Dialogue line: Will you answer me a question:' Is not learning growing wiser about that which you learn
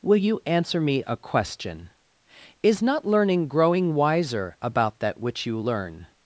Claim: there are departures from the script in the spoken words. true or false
false